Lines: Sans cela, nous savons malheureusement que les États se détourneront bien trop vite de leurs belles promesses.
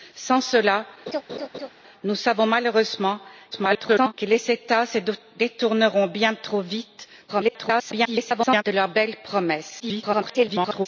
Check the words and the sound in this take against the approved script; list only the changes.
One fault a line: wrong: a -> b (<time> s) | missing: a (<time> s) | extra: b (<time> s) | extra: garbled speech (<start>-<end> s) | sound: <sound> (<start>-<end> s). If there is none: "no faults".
sound: laugh (1.1-1.7 s)
extra: garbled speech (3.5-4.1 s)
extra: garbled speech (7.3-8.6 s)
extra: garbled speech (9.8-10.9 s)